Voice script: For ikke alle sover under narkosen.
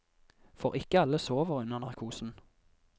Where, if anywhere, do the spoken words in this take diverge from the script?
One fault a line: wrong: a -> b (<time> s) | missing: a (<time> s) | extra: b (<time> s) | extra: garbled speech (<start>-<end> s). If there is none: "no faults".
no faults